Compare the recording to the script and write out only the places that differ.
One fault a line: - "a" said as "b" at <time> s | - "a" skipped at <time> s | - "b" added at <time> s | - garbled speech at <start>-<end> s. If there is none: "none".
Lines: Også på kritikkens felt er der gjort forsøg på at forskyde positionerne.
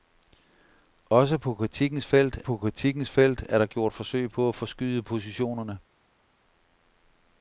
- "på kritikkens felt" added at 2.4 s